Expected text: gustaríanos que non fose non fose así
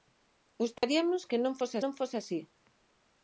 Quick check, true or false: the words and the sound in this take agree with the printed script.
false